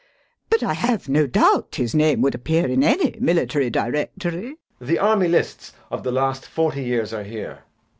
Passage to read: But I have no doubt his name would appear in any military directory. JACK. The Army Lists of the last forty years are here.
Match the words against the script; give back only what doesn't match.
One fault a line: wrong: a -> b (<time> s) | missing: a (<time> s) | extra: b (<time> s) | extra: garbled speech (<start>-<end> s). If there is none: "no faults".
no faults